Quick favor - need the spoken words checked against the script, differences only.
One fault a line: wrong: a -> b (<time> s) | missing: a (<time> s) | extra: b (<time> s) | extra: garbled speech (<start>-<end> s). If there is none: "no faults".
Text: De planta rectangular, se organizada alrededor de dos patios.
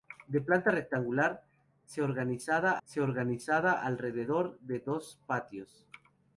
extra: se organizada (2.8 s)